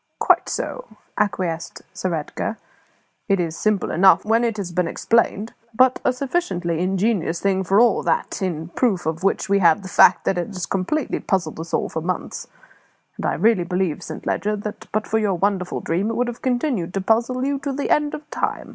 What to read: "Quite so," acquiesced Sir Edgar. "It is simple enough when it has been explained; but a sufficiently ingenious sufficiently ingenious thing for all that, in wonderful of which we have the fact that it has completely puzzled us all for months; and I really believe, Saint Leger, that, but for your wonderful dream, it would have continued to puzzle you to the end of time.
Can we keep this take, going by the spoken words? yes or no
no